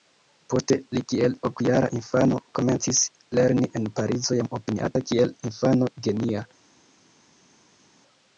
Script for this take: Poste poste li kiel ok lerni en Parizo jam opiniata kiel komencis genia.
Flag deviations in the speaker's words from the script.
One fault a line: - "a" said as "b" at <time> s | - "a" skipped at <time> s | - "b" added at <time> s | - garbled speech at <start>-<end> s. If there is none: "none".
- "poste" skipped at 0.8 s
- "jara infano komencis" added at 1.7 s
- "komencis" said as "infano" at 5.5 s